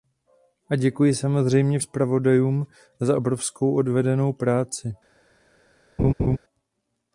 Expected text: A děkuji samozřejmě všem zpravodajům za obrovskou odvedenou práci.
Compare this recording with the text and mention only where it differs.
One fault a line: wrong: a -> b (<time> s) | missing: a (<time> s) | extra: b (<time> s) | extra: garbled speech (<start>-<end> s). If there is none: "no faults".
missing: všem (1.8 s)